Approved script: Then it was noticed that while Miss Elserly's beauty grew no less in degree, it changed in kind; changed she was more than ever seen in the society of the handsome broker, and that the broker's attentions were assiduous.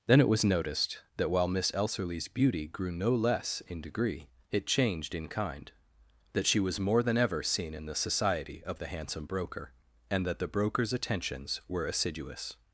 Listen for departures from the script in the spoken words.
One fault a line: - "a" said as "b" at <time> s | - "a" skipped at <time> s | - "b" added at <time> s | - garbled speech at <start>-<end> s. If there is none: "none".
- "changed" said as "that" at 6.3 s